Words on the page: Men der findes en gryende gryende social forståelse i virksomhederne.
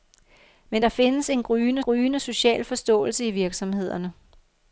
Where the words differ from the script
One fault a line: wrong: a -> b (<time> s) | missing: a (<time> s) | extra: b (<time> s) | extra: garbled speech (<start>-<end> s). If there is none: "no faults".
no faults